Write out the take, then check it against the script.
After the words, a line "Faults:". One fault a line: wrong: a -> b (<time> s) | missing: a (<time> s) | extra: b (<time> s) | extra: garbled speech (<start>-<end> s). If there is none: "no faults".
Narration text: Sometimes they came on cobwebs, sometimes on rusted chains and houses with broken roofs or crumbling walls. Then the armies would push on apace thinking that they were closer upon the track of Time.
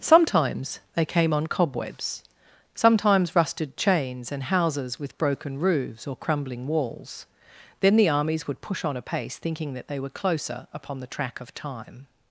Sometimes they came on cobwebs, sometimes rusted chains and houses with broken roofs or crumbling walls. Then the armies would push on apace thinking that they were closer upon the track of Time.
Faults:
missing: on (3.4 s)